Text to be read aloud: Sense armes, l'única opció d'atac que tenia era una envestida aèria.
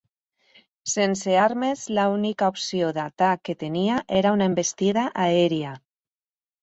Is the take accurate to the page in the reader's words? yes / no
yes